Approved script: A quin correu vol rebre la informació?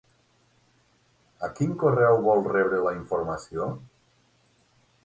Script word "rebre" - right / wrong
right